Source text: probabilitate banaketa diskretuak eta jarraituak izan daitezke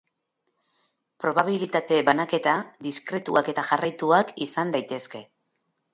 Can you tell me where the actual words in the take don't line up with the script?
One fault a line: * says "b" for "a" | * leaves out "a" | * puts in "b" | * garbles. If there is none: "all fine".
all fine